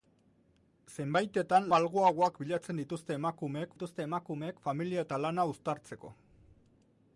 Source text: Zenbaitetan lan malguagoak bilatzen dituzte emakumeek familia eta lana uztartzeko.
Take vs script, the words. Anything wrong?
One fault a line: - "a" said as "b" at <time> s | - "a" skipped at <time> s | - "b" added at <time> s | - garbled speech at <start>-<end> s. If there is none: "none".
- "lan" skipped at 1.7 s
- "dituzte emakumeek" added at 3.7 s